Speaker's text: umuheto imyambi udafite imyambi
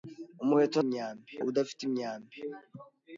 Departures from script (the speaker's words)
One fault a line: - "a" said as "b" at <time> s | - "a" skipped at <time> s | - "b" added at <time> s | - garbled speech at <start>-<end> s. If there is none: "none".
none